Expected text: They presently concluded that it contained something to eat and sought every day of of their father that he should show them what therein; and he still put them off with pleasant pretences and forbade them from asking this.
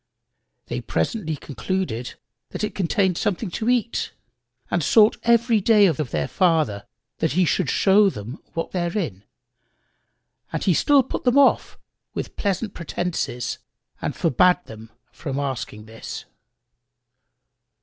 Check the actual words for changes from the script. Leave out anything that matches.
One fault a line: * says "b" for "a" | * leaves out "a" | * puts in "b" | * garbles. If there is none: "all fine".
all fine